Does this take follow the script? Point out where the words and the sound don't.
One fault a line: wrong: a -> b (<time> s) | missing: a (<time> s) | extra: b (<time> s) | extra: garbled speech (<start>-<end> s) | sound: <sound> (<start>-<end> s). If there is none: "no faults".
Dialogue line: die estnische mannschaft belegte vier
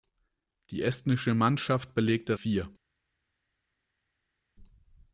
no faults